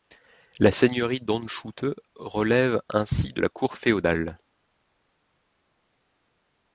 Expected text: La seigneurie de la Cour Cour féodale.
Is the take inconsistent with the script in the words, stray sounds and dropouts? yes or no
yes